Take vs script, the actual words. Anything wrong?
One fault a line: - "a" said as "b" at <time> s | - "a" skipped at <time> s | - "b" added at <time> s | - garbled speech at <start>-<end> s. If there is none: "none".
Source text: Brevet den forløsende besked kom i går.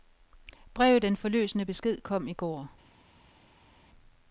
none